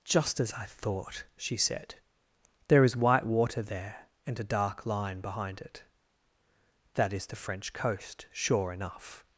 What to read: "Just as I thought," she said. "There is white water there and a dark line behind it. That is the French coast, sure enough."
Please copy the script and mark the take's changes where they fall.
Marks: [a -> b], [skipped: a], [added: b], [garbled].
"Just as I thought," she said. "There is white water there and a dark line behind it. That is the French coast, sure enough."